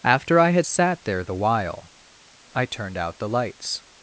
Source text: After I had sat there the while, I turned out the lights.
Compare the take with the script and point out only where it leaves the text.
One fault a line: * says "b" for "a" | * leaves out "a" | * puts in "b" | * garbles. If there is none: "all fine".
all fine